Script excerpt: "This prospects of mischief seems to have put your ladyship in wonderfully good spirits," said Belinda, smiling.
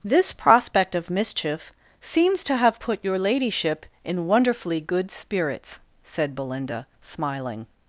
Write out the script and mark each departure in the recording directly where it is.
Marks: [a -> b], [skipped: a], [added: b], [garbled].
"This [prospects -> prospect] of mischief seems to have put your ladyship in wonderfully good spirits," said Belinda, smiling.